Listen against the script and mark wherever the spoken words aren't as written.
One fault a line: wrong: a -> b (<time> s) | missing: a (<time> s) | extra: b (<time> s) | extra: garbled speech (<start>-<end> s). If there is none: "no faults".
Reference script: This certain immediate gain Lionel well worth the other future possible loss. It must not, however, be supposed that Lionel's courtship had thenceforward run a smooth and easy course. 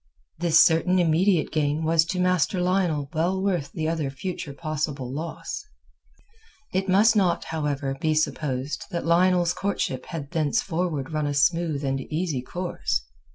extra: was to Master (1.8 s)